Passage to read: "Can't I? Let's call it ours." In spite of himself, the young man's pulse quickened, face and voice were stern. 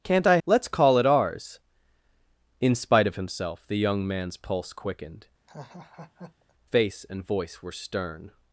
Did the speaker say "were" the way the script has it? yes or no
yes